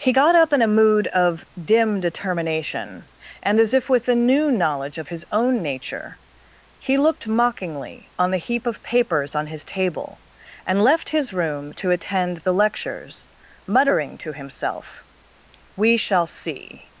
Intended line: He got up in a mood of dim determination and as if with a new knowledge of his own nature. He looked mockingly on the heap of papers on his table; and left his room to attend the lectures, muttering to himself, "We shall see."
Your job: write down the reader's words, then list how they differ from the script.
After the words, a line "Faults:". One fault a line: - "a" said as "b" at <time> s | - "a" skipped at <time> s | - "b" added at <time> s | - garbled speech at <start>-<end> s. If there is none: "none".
He got up in a mood of dim determination and as if with a new knowledge of his own nature. He looked mockingly on the heap of papers on his table; and left his room to attend the lectures, muttering to himself, "We shall see."
Faults:
none